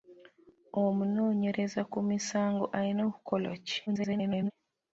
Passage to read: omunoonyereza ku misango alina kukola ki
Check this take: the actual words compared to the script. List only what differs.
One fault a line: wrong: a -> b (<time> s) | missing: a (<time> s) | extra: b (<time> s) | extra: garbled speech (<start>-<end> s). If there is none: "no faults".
extra: garbled speech (3.9-4.5 s)